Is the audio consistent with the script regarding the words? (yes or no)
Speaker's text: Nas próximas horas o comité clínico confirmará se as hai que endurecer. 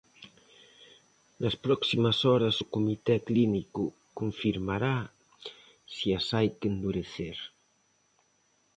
yes